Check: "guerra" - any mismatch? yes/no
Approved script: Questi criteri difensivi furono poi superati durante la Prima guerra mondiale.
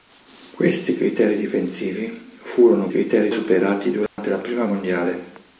yes